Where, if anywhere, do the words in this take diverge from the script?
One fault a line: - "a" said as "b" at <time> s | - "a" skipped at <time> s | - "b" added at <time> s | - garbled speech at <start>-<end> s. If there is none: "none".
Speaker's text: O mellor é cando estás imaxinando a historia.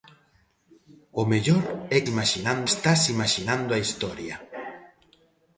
- "cando" said as "imaxinando" at 2.1 s